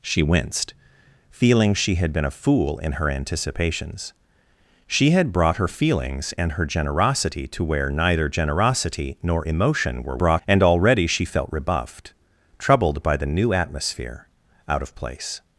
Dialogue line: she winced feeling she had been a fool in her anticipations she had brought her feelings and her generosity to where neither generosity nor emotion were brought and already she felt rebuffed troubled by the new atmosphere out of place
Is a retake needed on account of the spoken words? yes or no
no